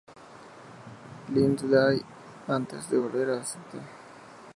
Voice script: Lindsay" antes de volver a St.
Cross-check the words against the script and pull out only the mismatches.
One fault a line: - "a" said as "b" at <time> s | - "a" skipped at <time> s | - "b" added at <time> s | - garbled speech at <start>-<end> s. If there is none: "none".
none